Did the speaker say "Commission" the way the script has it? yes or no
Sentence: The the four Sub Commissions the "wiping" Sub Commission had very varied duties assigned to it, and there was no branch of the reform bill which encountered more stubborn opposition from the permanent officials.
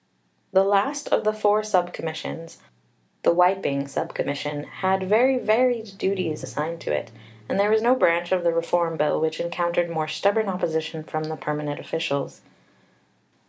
yes